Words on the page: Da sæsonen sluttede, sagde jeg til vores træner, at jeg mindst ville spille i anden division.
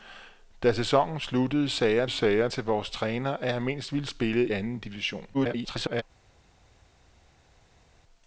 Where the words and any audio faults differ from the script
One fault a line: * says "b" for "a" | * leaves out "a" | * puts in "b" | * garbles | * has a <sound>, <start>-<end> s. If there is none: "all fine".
* puts in "sagde jeg"
* leaves out "i"
* garbles